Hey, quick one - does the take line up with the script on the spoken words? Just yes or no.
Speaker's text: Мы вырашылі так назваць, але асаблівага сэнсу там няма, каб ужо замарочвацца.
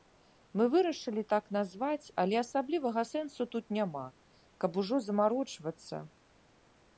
no